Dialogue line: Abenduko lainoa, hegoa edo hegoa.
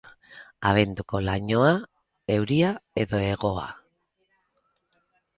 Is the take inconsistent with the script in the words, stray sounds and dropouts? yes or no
yes